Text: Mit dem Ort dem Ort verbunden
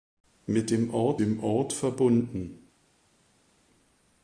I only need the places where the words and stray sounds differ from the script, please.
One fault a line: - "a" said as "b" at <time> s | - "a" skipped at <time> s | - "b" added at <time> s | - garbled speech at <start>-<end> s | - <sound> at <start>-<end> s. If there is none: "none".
none